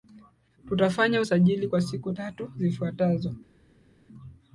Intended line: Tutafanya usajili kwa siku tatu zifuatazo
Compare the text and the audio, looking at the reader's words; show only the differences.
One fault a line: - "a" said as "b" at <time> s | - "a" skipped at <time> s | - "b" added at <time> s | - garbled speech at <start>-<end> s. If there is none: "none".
none